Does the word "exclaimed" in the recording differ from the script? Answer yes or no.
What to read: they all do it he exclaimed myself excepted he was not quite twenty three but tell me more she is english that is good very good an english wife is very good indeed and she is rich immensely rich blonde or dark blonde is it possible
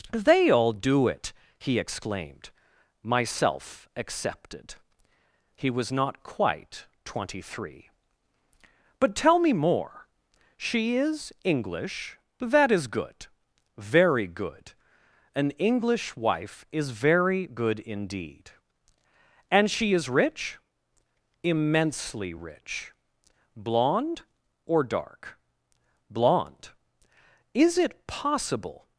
no